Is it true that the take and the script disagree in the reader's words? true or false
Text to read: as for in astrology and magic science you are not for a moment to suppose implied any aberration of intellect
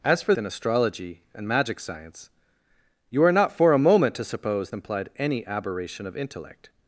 false